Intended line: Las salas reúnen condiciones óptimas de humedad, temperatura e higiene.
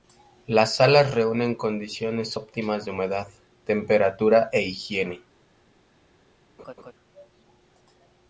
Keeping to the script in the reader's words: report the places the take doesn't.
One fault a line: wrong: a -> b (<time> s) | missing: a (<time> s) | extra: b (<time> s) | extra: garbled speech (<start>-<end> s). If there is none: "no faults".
no faults